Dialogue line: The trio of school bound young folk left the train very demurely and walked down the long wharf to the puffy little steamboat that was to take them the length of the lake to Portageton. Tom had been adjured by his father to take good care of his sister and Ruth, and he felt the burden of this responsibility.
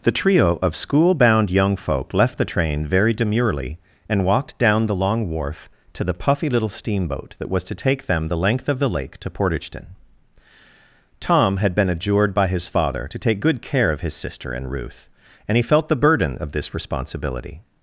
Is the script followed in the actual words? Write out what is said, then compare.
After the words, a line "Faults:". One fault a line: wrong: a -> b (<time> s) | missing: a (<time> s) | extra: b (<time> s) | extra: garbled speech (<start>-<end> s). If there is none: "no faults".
The trio of school bound young folk left the train very demurely and walked down the long wharf to the puffy little steamboat that was to take them the length of the lake to Portageton. Tom had been adjured by his father to take good care of his sister and Ruth, and he felt the burden of this responsibility.
Faults:
no faults